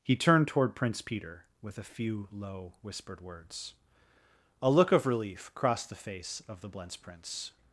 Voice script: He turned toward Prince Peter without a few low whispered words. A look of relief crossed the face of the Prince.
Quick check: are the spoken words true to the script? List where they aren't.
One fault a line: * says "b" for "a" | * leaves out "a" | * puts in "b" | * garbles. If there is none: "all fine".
* says "with" for "without"
* puts in "Blentz"